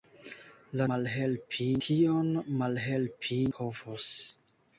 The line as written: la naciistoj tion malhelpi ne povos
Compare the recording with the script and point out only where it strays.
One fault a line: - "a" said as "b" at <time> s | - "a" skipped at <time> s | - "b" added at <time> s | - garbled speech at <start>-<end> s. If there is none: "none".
- "naciistoj" said as "malhelpi" at 0.9 s
- "ne" skipped at 3.4 s